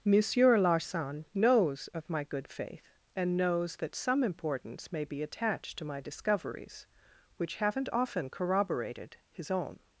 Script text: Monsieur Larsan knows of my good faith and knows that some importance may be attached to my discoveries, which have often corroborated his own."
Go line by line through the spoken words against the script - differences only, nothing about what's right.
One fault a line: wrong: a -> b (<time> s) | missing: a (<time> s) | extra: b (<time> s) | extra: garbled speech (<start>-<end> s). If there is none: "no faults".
wrong: have -> haven't (7.6 s)